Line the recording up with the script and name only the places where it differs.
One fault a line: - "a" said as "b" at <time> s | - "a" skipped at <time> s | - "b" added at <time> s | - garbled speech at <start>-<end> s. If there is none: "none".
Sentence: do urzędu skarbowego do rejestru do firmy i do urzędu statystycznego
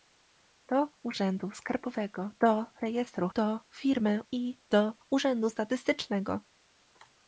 none